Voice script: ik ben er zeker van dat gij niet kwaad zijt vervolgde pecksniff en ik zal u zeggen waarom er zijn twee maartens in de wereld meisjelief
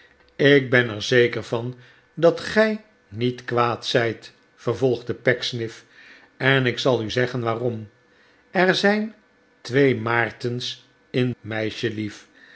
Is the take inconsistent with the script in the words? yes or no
yes